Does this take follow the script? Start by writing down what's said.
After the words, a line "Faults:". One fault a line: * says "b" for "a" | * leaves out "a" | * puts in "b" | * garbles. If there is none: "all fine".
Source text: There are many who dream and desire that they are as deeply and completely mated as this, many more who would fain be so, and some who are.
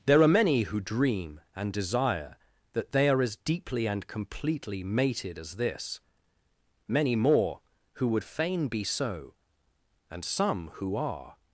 There are many who dream and desire that they are as deeply and completely mated as this, many more who would fain be so, and some who are.
Faults:
all fine